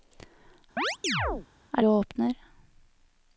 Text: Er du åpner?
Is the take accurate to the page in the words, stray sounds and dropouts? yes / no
no